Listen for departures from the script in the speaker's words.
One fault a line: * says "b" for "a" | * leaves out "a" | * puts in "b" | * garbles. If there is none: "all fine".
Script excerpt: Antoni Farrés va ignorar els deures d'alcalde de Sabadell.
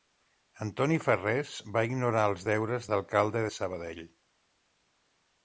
all fine